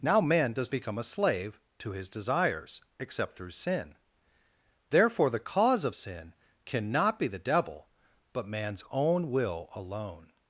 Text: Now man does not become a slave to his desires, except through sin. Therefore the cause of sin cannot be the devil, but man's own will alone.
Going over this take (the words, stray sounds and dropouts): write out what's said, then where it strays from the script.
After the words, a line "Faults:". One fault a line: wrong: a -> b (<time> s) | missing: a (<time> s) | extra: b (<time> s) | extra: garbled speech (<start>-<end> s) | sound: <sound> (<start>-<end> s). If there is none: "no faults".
Now man does become a slave to his desires, except through sin. Therefore the cause of sin cannot be the devil, but man's own will alone.
Faults:
missing: not (0.7 s)